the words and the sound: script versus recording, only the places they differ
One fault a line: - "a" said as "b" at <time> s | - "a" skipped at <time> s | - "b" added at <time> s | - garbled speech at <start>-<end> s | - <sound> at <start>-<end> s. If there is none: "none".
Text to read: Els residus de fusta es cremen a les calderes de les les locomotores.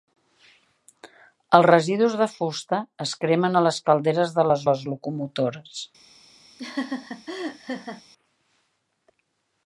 - laugh at 6.6-8.0 s